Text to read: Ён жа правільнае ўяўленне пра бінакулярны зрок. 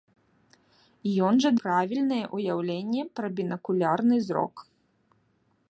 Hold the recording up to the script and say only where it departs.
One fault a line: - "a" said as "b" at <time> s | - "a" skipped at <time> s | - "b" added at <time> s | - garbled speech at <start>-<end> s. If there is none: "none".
none